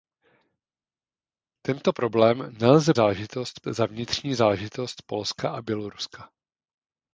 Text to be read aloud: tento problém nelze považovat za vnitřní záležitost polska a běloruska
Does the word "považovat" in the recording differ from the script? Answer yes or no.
yes